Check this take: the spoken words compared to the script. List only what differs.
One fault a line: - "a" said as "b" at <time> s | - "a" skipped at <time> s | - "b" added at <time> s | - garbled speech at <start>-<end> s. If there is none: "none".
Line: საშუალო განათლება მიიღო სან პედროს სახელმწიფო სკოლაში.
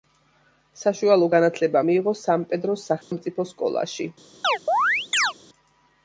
none